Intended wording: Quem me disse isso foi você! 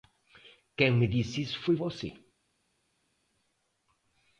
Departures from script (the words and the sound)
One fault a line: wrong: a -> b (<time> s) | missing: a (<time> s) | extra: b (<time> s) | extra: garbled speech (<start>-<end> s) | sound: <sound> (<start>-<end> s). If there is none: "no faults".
no faults